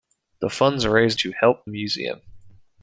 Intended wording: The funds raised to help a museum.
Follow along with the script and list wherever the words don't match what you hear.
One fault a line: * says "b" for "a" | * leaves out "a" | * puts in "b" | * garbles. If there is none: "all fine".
all fine